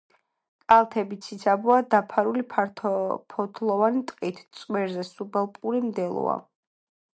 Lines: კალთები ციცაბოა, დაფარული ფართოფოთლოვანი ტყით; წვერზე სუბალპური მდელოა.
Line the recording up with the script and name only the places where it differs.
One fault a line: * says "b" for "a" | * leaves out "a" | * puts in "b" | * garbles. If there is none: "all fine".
all fine